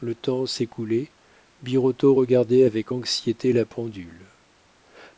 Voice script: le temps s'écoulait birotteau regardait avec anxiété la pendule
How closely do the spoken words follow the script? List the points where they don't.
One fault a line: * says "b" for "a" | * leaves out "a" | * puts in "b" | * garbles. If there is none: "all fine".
all fine